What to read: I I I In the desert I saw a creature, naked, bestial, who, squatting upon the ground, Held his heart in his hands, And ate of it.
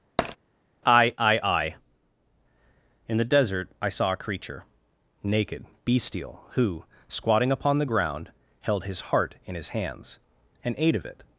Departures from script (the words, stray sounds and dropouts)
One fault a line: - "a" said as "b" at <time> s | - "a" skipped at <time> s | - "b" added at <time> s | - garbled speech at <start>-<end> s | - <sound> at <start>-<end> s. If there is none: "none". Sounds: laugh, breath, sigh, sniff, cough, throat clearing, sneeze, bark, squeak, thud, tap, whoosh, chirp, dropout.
- tap at 0.2-0.4 s